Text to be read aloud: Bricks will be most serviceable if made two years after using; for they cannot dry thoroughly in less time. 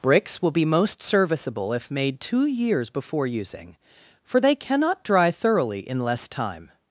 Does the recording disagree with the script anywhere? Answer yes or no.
yes